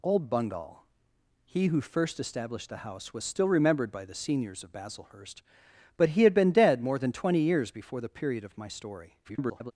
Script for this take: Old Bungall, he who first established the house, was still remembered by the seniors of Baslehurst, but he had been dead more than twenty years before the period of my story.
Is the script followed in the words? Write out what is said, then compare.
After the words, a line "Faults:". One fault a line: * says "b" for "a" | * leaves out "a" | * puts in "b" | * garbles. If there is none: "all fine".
Old Bungall, he who first established the house, was still remembered by the seniors of Baslehurst, but he had been dead more than twenty years before the period of my story. [garbled]
Faults:
* garbles